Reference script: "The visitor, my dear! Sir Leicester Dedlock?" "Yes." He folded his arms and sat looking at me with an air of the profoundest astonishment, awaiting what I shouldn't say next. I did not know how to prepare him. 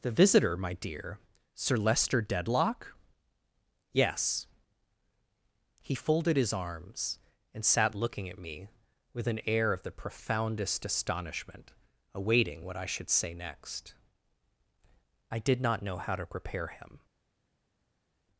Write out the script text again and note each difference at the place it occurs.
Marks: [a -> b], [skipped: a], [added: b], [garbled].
"The visitor, my dear! Sir Leicester Dedlock?" "Yes." He folded his arms and sat looking at me with an air of the profoundest astonishment, awaiting what I [shouldn't -> should] say next. I did not know how to prepare him.